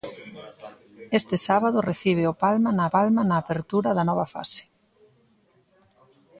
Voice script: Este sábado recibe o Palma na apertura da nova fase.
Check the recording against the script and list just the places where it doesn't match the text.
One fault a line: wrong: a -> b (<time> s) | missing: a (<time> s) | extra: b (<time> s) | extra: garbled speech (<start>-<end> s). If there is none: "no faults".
extra: Palma na (2.9 s)